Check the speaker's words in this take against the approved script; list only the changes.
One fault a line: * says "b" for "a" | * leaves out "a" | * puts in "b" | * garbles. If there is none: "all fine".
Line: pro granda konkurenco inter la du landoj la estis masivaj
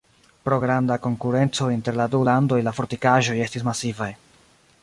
* puts in "fortikaĵoj"